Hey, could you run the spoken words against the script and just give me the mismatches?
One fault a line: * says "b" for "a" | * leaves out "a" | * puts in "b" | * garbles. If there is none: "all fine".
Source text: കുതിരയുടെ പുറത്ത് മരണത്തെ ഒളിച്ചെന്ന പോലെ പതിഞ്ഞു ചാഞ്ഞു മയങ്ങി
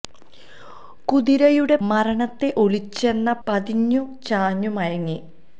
* leaves out "പുറത്ത്"
* leaves out "പോലെ"